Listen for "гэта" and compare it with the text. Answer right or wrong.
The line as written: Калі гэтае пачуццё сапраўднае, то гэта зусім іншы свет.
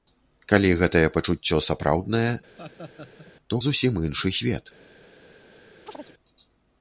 wrong